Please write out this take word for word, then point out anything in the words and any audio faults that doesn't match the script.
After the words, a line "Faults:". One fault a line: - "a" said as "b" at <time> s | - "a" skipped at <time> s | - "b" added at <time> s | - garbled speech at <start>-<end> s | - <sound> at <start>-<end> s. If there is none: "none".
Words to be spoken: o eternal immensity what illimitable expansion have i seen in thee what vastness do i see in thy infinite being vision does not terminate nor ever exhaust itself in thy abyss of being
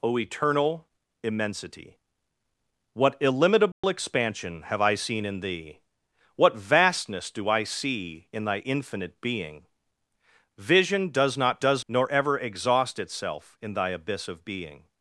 o eternal immensity what illimitable expansion have i seen in thee what vastness do i see in thy infinite being vision does not does nor ever exhaust itself in thy abyss of being
Faults:
- dropout at 3.7-3.8 s
- "terminate" said as "does" at 11.6 s